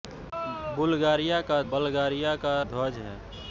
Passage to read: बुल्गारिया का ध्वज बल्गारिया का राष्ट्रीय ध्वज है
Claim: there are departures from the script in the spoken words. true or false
true